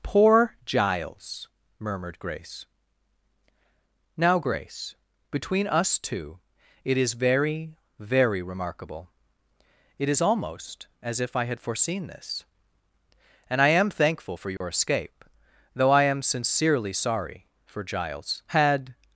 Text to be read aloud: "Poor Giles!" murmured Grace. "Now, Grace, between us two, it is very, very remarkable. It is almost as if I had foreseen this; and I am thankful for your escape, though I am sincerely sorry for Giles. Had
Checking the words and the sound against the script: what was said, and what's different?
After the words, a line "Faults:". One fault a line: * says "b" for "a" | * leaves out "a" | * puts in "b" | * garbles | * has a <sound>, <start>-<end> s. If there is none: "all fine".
"Poor Giles!" murmured Grace. "Now, Grace, between us two, it is very, very remarkable. It is almost as if I had foreseen this; and I am thankful for your escape, though I am sincerely sorry for Giles. Had
Faults:
* has a dropout, 14.6-14.6 s